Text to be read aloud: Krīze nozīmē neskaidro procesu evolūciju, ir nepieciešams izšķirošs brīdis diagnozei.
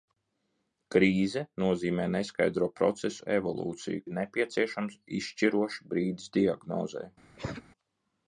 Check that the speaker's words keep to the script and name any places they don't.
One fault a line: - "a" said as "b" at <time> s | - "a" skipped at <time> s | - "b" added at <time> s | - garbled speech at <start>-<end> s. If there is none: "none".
none